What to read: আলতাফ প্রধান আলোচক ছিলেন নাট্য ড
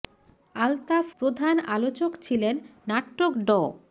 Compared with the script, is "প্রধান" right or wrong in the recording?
right